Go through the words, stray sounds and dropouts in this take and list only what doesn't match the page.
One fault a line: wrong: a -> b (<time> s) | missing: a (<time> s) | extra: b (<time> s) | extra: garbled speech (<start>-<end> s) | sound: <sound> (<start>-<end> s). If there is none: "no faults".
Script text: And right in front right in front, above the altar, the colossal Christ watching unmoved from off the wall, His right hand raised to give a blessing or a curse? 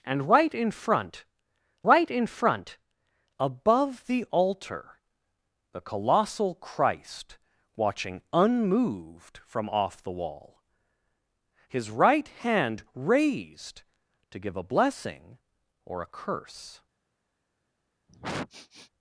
sound: sniff (18.1-18.9 s)